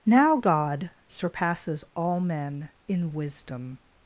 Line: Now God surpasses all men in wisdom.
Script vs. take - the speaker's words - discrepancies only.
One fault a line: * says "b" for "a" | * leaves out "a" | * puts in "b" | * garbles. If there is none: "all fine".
all fine